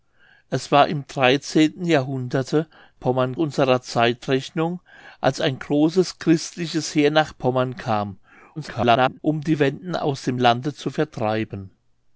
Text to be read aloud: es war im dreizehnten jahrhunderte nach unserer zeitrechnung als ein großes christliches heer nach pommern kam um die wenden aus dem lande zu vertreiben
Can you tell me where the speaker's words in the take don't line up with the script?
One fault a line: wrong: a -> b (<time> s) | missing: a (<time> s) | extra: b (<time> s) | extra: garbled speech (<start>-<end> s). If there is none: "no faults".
wrong: nach -> pommern (3.0 s)
extra: garbled speech (8.6-9.2 s)